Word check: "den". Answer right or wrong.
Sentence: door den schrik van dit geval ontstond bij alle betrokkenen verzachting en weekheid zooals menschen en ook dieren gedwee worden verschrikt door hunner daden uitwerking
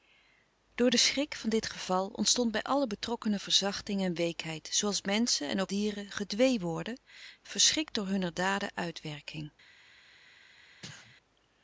right